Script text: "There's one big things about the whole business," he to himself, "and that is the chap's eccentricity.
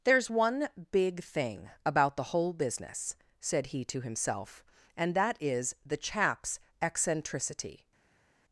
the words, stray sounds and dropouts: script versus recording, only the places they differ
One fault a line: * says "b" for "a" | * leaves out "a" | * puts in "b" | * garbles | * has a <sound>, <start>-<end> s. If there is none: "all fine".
* says "thing" for "things"
* puts in "said"